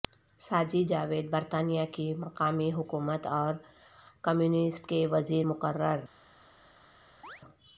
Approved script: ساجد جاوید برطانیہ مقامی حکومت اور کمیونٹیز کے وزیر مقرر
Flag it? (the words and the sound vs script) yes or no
yes